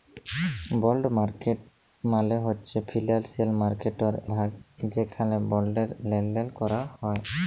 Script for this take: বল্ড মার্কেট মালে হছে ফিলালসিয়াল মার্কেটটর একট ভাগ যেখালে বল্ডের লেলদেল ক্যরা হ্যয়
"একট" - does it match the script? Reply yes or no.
no